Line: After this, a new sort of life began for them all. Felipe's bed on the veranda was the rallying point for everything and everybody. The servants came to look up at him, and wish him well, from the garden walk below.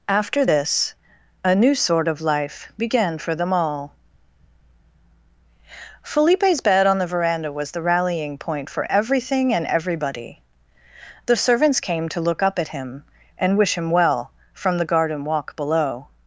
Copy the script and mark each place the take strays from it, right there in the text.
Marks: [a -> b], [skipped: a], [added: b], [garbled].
After this, a new sort of life began for them all. Felipe's bed on the veranda was the rallying point for everything and everybody. The servants came to look up at him, and wish him well, from the garden walk below.